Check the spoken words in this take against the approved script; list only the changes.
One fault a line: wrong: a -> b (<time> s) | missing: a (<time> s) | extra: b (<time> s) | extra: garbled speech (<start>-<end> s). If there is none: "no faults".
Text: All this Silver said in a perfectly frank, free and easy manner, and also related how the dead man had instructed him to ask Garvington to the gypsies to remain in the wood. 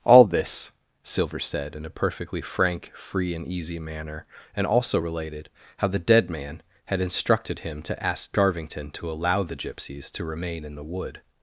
extra: allow (9.1 s)